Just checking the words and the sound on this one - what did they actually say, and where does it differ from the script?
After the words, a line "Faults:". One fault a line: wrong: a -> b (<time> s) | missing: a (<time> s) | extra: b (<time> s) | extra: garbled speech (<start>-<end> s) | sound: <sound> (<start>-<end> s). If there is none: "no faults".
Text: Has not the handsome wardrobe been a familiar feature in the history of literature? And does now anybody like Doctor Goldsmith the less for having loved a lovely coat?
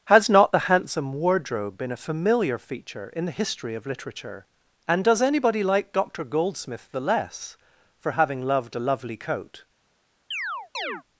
Has not the handsome wardrobe been a familiar feature in the history of literature? And does anybody like Doctor Goldsmith the less for having loved a lovely coat?
Faults:
missing: now (5.2 s)
sound: chirp (10.3-11.0 s)